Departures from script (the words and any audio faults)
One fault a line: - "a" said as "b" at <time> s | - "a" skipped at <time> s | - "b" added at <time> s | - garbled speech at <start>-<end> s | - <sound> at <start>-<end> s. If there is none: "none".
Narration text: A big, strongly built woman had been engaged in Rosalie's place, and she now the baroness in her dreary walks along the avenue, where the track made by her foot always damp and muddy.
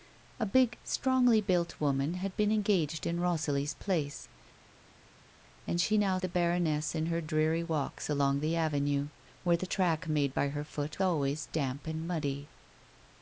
none